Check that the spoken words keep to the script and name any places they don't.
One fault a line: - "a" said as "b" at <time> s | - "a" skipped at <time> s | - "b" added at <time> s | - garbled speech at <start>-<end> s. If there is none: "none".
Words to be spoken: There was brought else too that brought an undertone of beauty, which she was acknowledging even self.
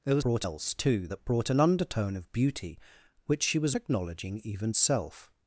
none